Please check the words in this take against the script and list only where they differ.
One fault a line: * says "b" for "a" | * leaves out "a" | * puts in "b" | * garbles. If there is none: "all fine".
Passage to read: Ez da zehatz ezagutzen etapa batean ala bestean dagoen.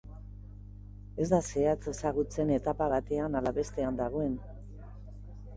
all fine